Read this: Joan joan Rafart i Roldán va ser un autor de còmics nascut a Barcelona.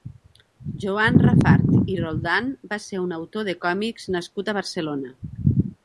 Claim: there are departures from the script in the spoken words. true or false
true